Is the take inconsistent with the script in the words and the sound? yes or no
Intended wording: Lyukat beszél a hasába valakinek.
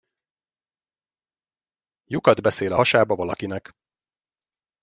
no